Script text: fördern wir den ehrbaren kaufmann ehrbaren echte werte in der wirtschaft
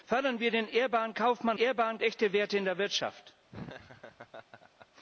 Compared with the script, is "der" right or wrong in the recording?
right